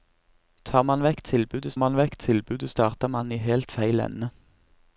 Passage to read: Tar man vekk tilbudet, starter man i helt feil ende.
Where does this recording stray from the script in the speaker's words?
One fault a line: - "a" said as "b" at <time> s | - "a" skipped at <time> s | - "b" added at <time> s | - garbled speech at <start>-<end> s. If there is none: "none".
- "man vekk tilbudet" added at 1.8 s